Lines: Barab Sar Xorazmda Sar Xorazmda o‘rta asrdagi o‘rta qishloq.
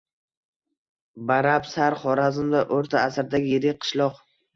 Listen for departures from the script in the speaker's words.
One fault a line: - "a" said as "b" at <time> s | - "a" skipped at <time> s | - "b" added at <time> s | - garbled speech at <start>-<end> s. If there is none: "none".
- "Sar Xorazmda" skipped at 2.6 s
- "o‘rta" said as "yirik" at 3.5 s